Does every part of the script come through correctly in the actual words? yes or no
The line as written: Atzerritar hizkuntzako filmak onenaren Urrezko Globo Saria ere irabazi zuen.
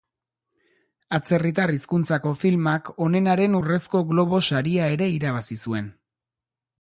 yes